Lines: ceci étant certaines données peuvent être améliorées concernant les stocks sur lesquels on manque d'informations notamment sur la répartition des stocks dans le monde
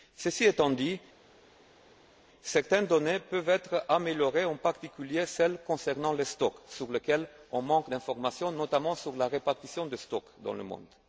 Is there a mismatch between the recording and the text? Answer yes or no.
yes